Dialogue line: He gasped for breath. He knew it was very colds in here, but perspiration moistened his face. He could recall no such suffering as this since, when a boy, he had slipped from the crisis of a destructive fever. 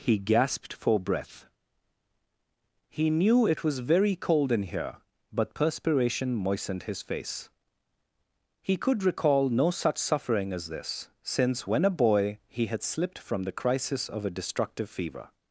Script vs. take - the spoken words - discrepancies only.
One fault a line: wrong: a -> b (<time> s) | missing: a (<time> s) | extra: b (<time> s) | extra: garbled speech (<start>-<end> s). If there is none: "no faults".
wrong: colds -> cold (4.2 s)